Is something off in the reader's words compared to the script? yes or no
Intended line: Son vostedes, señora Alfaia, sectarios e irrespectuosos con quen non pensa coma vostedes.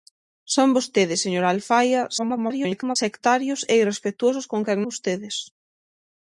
yes